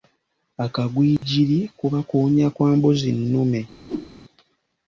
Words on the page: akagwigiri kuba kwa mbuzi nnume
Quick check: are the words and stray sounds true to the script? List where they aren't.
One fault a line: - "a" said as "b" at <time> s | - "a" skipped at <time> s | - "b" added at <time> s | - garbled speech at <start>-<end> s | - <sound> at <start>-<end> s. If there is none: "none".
- dropout at 1.2-1.2 s
- "kuwunya" added at 2.1 s
- whoosh at 3.9-4.1 s